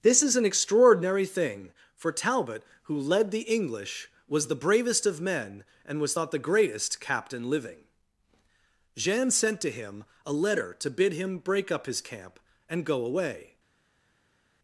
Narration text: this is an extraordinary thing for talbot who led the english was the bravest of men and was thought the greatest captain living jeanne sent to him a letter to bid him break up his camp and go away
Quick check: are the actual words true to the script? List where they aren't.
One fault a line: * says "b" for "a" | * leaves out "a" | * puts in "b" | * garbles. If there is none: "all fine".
all fine